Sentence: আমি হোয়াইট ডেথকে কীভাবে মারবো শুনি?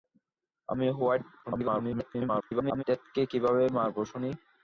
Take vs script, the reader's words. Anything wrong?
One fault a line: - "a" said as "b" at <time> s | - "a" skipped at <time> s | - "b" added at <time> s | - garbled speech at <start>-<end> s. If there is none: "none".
- garbled speech at 1.4-2.8 s